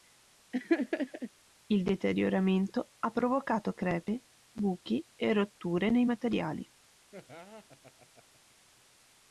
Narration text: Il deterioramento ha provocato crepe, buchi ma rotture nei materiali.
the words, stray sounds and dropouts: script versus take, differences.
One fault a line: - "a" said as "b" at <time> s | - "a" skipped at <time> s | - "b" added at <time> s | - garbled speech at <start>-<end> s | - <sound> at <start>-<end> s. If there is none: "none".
- laugh at 0.5-1.3 s
- "ma" said as "e" at 5.1 s
- laugh at 7.1-8.6 s